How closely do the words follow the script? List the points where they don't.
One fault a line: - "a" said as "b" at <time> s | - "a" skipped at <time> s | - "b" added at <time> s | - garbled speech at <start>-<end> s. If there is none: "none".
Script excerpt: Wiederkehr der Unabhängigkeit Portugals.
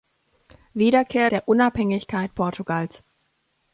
none